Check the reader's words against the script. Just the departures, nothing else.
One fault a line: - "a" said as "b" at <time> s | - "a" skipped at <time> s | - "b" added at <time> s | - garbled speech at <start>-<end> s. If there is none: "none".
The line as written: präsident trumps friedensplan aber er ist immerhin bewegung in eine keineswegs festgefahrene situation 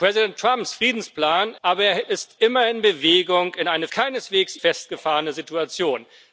none